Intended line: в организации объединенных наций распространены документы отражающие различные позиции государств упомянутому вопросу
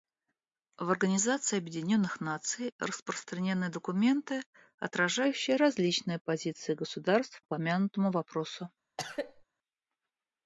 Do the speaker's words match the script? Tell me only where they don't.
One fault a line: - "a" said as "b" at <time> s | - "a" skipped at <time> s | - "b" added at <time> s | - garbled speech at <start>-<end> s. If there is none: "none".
none